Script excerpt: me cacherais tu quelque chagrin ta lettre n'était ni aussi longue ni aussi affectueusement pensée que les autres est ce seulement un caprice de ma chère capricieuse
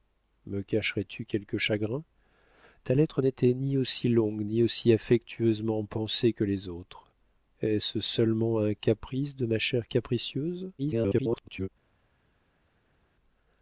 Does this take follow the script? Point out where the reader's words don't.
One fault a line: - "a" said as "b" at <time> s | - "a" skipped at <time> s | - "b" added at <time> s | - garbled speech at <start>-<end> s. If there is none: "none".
- garbled speech at 10.8-11.7 s